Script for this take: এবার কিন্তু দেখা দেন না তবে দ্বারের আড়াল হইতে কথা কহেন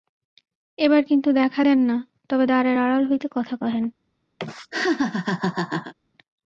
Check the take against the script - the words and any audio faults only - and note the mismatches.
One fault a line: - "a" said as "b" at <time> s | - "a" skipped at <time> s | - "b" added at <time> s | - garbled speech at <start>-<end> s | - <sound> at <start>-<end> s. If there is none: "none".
- laugh at 4.4-5.9 s